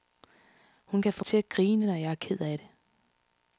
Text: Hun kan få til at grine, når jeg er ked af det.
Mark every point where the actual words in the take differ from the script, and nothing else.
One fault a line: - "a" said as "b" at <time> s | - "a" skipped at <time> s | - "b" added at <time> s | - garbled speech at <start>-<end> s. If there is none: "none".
none